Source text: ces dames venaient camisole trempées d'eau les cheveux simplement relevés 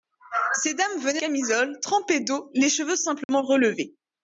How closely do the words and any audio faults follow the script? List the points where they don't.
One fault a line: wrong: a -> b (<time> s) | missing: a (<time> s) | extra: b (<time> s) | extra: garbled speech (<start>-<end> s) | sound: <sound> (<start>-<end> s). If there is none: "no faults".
sound: dropout (3.2-3.3 s)